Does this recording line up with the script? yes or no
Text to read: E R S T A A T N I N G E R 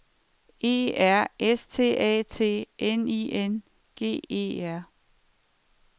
no